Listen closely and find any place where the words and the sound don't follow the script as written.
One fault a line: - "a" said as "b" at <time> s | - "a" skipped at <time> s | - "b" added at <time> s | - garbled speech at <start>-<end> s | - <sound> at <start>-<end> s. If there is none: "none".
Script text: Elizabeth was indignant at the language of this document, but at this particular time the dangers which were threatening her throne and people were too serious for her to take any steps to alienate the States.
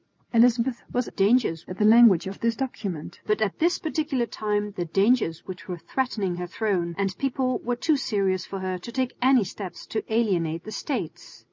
- "indignant" said as "dangers" at 1.1 s